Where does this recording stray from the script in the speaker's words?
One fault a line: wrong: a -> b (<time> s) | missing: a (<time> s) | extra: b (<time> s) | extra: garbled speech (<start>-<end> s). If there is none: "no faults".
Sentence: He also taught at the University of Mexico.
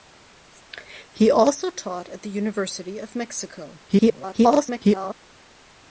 extra: garbled speech (3.9-5.1 s)